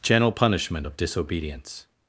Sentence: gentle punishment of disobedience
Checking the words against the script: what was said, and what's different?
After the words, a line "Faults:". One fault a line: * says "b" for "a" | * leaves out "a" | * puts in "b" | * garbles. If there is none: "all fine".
gentle punishment of disobedience
Faults:
all fine